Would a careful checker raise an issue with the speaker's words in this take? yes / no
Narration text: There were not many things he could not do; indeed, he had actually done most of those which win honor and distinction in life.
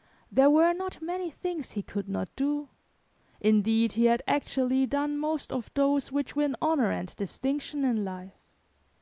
no